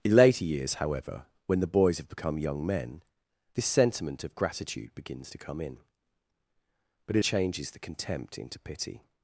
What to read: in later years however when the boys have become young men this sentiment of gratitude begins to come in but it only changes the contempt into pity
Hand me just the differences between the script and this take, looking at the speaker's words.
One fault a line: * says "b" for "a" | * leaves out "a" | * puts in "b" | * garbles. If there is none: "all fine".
* leaves out "only"